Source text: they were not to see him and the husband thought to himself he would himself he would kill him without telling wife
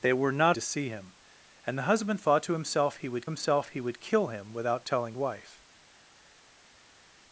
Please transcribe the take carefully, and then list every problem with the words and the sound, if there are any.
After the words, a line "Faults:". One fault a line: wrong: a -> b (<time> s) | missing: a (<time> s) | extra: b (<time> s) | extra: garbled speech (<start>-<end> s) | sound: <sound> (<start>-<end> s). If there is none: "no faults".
they were not to see him and the husband thought to himself he would himself he would kill him without telling wife
Faults:
no faults